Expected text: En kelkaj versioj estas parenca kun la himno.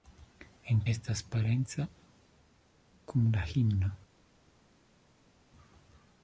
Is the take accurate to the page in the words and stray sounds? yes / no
no